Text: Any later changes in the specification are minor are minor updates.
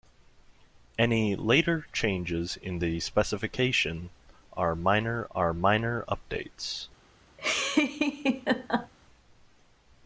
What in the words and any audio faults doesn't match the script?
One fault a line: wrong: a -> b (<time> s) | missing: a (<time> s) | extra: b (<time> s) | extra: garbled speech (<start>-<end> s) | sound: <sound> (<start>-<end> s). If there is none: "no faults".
sound: laugh (7.4-8.9 s)